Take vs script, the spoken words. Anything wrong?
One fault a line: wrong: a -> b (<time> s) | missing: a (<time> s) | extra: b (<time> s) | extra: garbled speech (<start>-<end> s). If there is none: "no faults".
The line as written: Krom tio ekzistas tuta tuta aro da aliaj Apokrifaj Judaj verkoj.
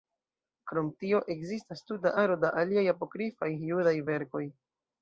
missing: tuta (2.1 s)